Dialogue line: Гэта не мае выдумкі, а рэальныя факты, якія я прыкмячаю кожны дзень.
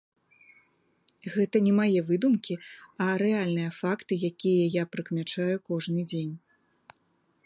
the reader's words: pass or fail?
pass